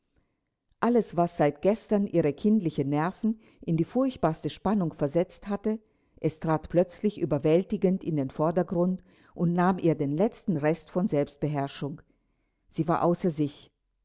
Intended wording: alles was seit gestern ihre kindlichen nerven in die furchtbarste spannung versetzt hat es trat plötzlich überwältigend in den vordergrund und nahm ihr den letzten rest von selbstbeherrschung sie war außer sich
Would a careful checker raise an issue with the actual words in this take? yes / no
yes